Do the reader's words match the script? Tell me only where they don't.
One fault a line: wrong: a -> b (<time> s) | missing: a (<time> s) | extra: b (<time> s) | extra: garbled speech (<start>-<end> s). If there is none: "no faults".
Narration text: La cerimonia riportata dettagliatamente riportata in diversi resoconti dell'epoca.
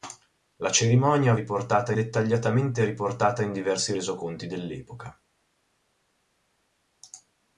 no faults